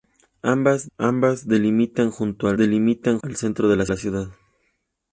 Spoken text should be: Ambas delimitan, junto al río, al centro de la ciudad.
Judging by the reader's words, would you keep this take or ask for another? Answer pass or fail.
fail